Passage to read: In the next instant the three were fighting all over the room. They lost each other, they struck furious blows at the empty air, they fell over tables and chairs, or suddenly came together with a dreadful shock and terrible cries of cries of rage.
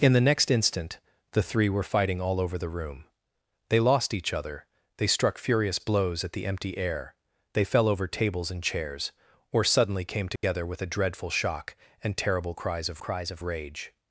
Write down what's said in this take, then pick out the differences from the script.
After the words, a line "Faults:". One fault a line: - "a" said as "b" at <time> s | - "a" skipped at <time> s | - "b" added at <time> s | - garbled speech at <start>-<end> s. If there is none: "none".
In the next instant the three were fighting all over the room. They lost each other, they struck furious blows at the empty air, they fell over tables and chairs, or suddenly came together with a dreadful shock and terrible cries of cries of rage.
Faults:
none